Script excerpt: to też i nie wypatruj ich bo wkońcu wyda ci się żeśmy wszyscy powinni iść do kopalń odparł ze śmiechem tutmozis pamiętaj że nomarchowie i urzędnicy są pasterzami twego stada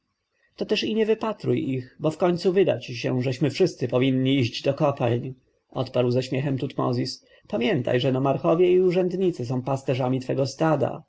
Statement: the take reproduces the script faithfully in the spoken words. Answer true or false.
true